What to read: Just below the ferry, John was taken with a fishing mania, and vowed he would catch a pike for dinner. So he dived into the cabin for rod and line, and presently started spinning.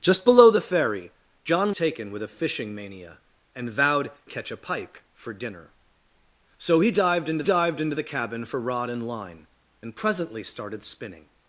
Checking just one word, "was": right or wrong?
wrong